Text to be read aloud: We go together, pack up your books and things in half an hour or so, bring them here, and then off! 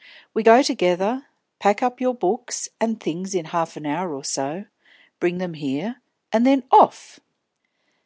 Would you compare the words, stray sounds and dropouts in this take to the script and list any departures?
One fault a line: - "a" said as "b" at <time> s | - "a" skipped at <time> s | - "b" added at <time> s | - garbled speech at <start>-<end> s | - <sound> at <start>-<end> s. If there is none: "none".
none